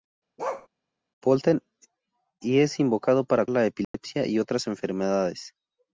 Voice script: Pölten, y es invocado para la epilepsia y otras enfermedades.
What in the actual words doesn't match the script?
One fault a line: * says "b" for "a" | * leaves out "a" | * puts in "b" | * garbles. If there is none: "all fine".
all fine